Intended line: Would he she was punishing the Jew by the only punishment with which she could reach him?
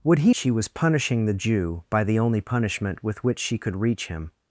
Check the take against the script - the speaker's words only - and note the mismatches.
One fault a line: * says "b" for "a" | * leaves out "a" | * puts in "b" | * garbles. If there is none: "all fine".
all fine